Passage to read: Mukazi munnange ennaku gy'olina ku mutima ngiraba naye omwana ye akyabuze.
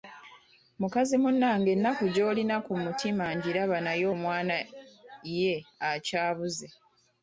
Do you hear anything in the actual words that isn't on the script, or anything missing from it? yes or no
no